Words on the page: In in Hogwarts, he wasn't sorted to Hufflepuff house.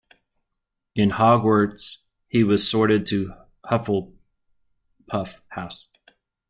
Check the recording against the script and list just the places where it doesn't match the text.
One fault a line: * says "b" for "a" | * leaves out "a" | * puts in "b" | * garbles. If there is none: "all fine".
* leaves out "in"
* says "was" for "wasn't"